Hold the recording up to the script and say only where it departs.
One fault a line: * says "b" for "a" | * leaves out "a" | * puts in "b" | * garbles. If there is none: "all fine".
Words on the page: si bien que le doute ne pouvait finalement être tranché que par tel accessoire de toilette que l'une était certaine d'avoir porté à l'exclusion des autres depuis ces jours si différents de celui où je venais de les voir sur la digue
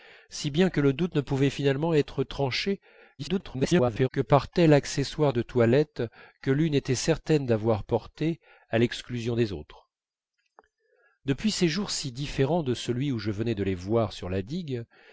* garbles